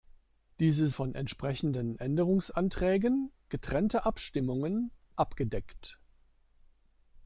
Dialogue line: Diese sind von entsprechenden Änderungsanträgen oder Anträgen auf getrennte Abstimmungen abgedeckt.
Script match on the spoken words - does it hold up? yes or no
no